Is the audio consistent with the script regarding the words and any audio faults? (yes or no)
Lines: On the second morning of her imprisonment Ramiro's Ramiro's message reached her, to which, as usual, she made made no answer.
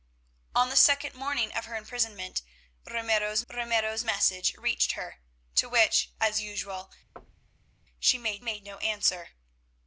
no